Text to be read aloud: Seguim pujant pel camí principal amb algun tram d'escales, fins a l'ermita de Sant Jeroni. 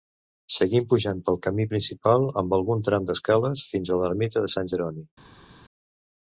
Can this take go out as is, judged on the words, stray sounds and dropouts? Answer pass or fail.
pass